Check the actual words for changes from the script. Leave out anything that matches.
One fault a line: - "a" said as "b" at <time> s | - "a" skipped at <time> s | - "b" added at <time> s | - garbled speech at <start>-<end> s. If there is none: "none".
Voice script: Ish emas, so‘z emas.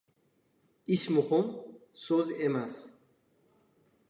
- "emas" said as "muhim" at 1.1 s